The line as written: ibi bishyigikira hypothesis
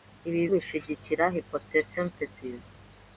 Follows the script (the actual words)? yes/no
yes